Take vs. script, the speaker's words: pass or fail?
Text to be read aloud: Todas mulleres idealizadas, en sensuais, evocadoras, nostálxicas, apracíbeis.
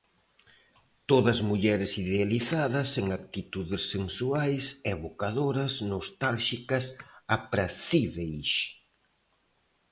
fail